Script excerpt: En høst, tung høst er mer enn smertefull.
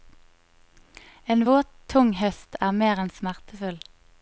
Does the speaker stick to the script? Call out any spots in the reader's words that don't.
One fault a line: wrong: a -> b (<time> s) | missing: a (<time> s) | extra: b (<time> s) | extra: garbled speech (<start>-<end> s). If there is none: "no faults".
wrong: høst -> våt (1.4 s)